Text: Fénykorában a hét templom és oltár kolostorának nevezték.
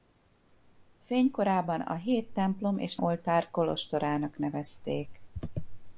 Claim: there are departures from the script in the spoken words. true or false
false